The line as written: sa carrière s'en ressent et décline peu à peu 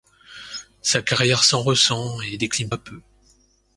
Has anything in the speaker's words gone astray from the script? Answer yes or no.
yes